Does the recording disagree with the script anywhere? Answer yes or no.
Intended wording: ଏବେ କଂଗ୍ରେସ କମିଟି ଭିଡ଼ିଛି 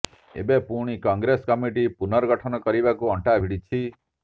yes